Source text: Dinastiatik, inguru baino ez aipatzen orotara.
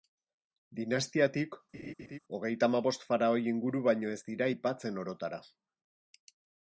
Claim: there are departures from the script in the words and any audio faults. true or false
true